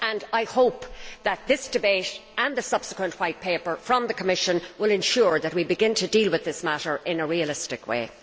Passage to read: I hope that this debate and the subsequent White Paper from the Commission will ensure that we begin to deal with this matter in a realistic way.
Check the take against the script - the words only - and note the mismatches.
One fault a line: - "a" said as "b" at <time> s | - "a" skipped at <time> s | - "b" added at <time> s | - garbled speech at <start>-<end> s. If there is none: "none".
none